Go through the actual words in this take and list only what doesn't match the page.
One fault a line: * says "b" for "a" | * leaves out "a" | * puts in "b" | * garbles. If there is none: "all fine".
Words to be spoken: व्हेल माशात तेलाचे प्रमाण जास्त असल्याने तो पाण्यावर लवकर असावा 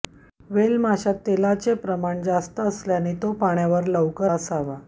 all fine